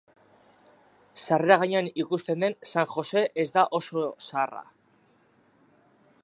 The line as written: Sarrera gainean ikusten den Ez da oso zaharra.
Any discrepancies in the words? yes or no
yes